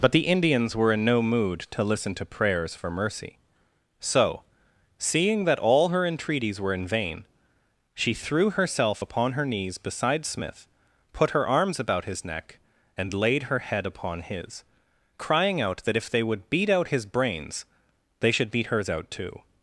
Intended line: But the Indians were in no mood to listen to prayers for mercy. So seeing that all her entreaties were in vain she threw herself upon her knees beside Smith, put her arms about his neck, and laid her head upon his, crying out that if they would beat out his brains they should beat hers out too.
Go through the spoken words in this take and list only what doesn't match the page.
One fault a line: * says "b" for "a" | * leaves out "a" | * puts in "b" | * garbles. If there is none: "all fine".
all fine